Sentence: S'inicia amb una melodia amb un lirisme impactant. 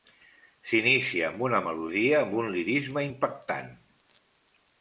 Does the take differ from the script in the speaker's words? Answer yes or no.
no